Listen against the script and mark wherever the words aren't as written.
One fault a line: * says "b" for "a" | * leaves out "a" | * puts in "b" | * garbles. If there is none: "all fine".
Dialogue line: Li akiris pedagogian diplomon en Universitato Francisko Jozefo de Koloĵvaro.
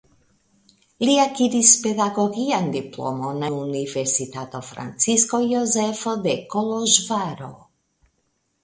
* leaves out "en"